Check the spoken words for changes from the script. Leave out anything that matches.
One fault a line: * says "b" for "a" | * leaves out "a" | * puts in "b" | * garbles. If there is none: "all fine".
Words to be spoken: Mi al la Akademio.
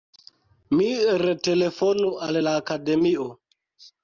* puts in "retelefonu"